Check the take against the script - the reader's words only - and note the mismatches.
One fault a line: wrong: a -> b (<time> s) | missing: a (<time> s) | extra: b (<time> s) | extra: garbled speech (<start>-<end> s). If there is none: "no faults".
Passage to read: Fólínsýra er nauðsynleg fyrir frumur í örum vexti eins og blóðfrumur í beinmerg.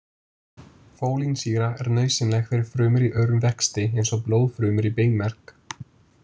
no faults